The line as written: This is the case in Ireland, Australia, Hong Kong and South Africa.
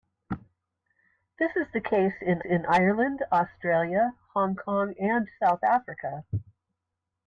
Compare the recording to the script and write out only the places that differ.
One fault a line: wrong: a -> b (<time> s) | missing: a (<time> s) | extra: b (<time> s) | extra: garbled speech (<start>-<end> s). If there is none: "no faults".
extra: in (2.5 s)